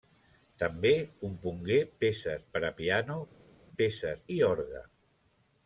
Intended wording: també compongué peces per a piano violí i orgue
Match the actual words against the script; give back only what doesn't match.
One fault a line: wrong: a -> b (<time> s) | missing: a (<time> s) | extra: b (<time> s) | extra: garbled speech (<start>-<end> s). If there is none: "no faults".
wrong: violí -> peces (3.8 s)